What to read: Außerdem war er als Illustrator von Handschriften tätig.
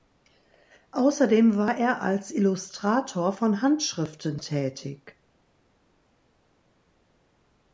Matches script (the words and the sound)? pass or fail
pass